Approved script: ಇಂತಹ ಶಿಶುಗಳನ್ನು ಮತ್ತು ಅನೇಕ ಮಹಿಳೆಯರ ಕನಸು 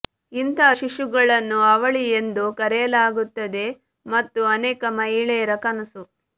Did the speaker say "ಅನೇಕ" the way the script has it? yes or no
yes